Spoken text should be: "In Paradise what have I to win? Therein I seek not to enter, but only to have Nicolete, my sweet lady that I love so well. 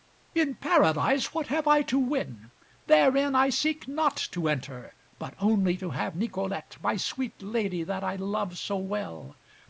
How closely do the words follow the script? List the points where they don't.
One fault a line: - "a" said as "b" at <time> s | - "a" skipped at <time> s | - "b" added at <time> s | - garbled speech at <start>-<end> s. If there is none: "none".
none